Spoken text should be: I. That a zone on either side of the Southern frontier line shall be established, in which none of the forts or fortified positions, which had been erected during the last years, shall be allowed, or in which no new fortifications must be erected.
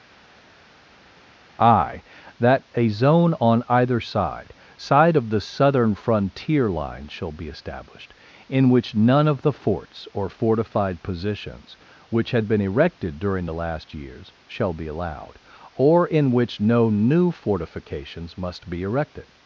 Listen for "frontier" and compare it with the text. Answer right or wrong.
right